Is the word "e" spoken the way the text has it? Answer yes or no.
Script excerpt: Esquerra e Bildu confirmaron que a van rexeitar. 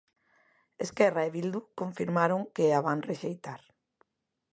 yes